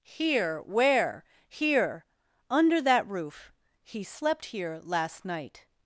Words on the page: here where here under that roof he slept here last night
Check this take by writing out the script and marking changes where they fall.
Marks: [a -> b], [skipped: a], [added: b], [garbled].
here where here under that roof he slept here last night